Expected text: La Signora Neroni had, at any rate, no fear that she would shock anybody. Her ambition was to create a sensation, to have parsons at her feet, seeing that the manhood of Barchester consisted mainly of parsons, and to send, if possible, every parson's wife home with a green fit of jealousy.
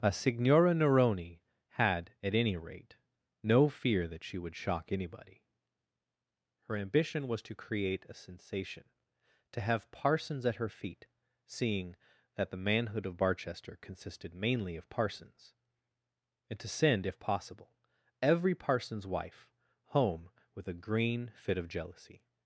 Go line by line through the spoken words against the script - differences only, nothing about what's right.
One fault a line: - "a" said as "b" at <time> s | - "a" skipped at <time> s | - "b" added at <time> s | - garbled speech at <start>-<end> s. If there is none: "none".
- "La" said as "A" at 0.0 s